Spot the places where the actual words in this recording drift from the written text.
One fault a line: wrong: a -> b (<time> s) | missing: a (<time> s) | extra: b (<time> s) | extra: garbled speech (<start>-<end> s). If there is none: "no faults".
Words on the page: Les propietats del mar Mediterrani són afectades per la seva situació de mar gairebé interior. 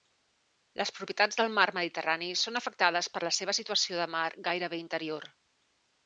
no faults